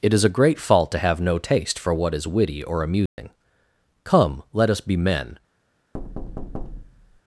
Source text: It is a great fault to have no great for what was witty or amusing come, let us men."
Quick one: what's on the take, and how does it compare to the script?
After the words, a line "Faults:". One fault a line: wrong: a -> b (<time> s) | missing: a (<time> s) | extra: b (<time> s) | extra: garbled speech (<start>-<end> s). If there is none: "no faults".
It is a great fault to have no taste for what is witty or amusing come, let us be men."
Faults:
wrong: great -> taste (1.4 s)
wrong: was -> is (2.1 s)
extra: be (4.8 s)